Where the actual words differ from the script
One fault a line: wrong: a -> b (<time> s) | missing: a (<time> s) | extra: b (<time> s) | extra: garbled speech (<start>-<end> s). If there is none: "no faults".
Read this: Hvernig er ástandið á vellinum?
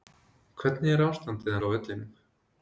no faults